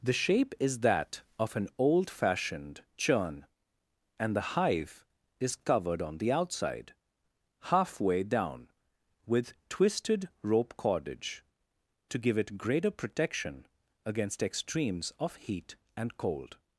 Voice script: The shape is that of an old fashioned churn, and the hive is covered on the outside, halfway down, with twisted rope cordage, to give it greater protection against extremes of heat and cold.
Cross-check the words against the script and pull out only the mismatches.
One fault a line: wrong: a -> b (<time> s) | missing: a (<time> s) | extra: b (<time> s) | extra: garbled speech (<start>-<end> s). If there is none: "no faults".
no faults